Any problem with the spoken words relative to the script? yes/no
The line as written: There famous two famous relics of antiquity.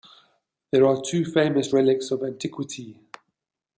yes